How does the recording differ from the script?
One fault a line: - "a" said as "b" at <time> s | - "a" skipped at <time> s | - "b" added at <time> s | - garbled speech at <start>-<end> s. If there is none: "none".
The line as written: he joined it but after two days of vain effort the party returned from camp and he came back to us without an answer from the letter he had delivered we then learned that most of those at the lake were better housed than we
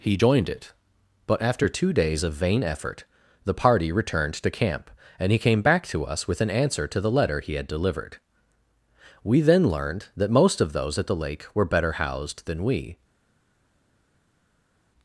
- "from" said as "to" at 4.3 s
- "without" said as "with" at 6.3 s
- "from" said as "to" at 6.9 s